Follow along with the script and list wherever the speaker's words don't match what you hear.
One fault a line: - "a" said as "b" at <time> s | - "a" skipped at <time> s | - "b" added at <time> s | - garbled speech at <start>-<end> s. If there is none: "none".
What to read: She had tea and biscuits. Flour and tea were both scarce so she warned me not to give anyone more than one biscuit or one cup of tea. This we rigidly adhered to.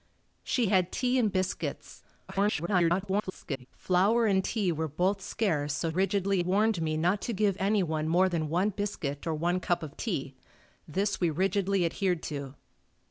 - garbled speech at 2.3-3.7 s
- "she" said as "rigidly" at 5.9 s